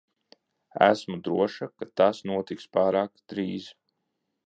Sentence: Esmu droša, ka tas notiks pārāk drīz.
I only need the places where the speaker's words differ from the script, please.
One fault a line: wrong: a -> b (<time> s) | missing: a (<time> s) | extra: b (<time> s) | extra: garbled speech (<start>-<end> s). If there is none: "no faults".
no faults